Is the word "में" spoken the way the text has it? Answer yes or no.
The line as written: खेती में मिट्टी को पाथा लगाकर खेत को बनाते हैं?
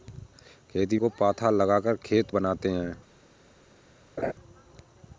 no